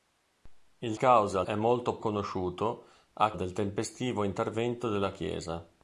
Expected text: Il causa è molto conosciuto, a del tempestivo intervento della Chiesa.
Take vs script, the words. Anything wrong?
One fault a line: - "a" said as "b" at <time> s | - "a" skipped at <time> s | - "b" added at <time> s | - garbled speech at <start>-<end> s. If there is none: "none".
none